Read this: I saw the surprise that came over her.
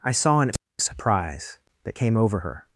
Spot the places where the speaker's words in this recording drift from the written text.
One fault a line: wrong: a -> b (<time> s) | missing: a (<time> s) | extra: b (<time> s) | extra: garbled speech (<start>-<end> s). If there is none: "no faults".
wrong: the -> an (0.4 s)